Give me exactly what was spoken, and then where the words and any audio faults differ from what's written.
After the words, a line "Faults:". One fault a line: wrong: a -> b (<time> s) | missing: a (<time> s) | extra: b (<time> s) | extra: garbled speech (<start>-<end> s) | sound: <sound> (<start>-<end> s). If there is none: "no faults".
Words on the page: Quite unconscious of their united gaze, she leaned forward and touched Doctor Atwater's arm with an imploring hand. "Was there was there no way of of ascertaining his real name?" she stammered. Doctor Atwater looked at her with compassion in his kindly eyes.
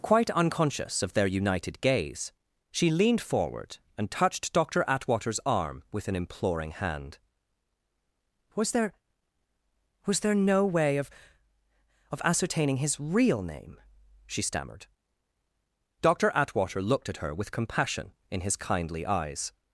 Quite unconscious of their united gaze, she leaned forward and touched Doctor Atwater's arm with an imploring hand. "Was there was there no way of of ascertaining his real name?" she stammered. Doctor Atwater looked at her with compassion in his kindly eyes.
Faults:
no faults